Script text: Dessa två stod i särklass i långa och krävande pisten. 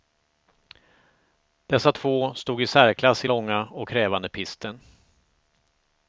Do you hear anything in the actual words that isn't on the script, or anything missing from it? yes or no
no